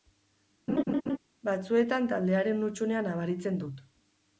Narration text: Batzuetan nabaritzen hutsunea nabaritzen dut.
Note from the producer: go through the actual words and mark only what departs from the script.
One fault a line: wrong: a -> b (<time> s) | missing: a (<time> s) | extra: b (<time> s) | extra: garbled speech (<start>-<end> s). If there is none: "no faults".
wrong: nabaritzen -> taldearen (2.1 s)